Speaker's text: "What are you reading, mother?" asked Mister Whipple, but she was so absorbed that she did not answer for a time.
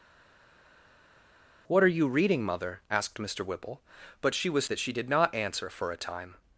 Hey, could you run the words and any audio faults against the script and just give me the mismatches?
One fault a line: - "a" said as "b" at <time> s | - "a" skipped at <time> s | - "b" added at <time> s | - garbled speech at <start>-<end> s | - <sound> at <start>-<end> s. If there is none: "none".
- "so absorbed" skipped at 4.6 s